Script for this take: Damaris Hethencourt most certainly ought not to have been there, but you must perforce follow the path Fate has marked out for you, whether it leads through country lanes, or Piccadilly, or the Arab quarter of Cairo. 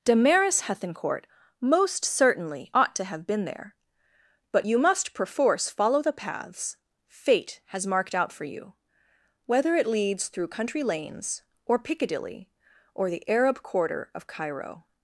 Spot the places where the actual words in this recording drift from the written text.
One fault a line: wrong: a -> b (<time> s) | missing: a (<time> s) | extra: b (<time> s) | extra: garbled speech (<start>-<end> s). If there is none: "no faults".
missing: not (2.9 s)
wrong: path -> paths (6.1 s)